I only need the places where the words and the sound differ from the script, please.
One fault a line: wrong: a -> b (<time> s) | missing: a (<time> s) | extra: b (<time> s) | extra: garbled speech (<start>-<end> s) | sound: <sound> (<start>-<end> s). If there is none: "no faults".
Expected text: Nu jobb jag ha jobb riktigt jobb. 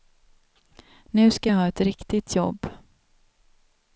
wrong: jobb -> ska (1.3 s)
wrong: jobb -> ett (1.7 s)